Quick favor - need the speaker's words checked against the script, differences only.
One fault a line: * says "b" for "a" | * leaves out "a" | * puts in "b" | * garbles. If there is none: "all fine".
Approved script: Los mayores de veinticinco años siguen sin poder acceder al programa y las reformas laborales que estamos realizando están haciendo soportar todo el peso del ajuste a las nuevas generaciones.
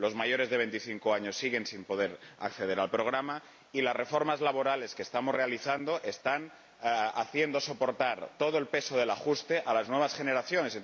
all fine